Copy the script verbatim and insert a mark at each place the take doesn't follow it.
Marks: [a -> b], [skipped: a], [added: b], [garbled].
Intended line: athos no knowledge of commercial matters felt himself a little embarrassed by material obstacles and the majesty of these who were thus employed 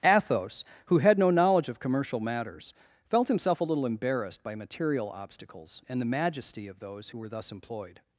athos [added: who had] no knowledge of commercial matters felt himself a little embarrassed by material obstacles and the majesty of [these -> those] who were thus employed